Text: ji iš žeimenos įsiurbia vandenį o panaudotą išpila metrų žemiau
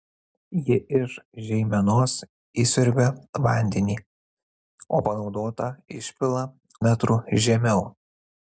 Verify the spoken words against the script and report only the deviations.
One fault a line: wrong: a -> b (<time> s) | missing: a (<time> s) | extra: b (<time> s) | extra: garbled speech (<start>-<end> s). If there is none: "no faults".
no faults